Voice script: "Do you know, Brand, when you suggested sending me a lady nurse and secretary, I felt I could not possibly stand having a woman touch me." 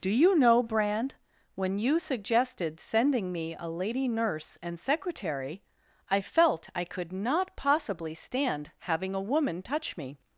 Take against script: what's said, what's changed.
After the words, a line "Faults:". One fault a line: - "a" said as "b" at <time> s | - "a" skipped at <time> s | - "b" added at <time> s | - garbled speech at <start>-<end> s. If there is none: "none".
"Do you know, Brand, when you suggested sending me a lady nurse and secretary, I felt I could not possibly stand having a woman touch me."
Faults:
none